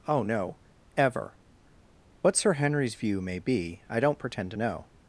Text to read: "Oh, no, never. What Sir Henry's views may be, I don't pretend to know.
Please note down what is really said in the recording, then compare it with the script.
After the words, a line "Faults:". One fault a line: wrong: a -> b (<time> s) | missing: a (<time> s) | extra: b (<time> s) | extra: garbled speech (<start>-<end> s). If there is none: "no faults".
"Oh, no, ever. What Sir Henry's view may be, I don't pretend to know.
Faults:
wrong: never -> ever (0.9 s)
wrong: views -> view (3.0 s)